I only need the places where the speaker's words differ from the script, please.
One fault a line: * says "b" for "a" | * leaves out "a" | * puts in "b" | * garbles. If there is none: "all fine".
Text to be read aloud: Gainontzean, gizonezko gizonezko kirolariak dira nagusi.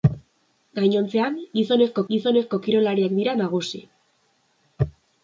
all fine